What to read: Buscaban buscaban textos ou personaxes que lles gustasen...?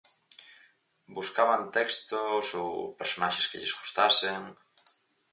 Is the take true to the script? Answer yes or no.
no